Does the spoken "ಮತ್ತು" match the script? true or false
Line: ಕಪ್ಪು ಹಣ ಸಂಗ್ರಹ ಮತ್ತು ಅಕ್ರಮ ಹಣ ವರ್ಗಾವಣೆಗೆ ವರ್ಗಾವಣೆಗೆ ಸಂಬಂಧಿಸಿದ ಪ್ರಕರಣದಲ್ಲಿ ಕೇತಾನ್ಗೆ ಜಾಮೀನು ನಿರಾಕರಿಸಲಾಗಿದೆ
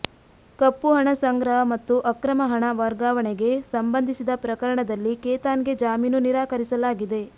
true